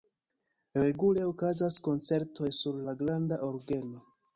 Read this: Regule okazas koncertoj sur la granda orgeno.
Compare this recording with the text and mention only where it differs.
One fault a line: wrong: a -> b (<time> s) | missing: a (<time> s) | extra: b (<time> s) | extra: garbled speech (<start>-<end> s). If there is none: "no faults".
no faults